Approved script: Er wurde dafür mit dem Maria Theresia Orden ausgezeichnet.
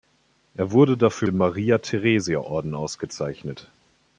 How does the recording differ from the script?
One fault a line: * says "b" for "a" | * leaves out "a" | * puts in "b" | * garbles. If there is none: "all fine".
* leaves out "mit"